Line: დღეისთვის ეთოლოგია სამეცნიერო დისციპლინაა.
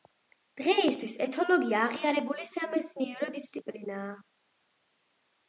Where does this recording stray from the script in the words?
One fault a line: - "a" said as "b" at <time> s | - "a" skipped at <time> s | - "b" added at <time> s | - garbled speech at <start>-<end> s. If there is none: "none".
- "აღიარებული" added at 1.9 s